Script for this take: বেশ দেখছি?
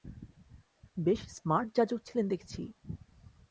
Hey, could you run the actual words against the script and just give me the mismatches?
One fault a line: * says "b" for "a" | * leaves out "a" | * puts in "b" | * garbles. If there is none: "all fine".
* puts in "স্মার্ট যাজক ছিলেন"